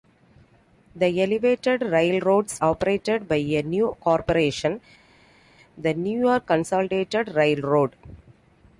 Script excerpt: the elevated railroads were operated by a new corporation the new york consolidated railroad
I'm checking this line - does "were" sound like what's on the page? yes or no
no